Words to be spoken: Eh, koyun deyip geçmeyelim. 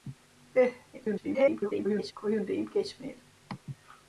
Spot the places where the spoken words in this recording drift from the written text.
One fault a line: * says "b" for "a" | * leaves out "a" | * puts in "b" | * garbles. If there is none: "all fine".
* garbles